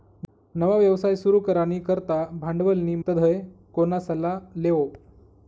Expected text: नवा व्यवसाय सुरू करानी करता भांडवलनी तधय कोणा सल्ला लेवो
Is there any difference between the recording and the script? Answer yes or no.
no